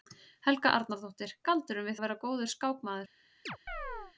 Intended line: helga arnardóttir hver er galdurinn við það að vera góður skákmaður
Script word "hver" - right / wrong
wrong